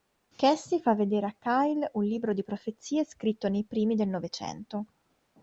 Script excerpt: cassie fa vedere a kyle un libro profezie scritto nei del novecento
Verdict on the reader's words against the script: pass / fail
fail